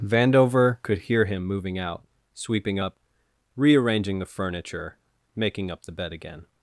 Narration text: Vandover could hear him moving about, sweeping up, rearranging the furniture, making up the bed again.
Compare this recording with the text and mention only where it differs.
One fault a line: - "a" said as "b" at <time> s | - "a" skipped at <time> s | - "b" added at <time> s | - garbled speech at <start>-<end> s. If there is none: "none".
- "about" said as "out" at 1.8 s